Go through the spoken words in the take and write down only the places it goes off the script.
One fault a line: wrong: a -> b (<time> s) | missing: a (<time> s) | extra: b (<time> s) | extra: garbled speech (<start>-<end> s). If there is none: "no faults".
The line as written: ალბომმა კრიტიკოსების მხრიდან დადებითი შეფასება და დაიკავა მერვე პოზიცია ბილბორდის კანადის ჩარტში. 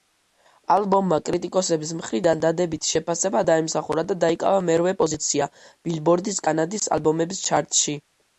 extra: დაიმსახურა (3.5 s)
extra: ალბომების (7.0 s)